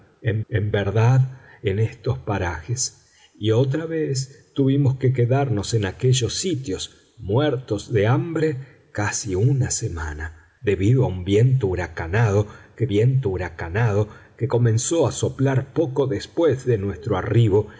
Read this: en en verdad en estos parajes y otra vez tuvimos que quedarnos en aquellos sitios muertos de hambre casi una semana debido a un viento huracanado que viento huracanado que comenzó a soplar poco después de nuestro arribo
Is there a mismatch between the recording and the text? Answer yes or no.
no